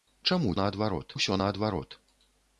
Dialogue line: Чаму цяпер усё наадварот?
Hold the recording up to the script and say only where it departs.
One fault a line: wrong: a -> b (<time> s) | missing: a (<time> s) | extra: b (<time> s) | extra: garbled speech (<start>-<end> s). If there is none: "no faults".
wrong: цяпер -> наадварот (0.6 s)